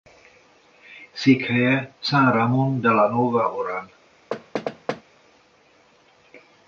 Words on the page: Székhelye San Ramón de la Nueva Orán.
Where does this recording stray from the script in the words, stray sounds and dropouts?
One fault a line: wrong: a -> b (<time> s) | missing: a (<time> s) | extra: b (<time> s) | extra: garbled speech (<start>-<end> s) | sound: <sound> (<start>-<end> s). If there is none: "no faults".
sound: thud (4.3-5.0 s)